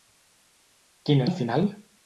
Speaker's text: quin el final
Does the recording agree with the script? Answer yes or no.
yes